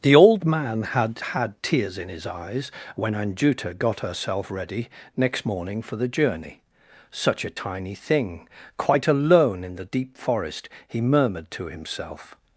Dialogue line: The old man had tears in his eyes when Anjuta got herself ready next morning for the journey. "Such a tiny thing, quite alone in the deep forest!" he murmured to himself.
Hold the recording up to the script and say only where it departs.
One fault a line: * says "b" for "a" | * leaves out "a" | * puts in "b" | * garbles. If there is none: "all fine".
* puts in "had"